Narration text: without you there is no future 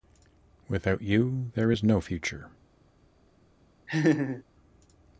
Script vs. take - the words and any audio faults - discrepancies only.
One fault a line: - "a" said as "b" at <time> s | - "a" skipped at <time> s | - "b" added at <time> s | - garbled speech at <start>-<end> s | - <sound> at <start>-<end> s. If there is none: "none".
- laugh at 3.9-4.4 s